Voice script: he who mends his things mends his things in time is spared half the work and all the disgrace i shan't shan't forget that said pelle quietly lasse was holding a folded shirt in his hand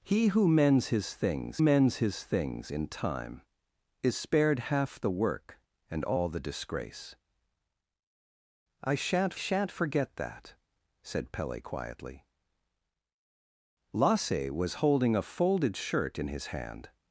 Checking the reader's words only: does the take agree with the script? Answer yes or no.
yes